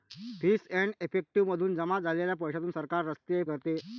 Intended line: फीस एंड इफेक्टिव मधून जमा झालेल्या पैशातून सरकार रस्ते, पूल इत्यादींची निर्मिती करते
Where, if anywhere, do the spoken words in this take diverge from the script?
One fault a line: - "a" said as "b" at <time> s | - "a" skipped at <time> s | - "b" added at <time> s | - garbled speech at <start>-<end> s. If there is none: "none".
- "पूल इत्यादींची निर्मिती" skipped at 3.4 s